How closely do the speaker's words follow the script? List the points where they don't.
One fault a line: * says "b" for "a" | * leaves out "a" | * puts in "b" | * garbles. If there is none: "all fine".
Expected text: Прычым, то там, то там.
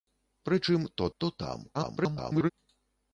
* leaves out "там"
* garbles